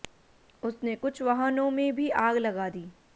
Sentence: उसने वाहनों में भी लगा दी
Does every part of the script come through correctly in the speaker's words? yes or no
no